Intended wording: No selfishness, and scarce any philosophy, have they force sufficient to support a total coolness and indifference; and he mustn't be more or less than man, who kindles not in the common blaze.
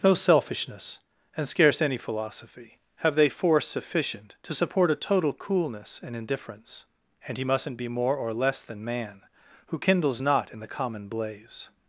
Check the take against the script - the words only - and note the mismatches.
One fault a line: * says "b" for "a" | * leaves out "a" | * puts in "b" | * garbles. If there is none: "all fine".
all fine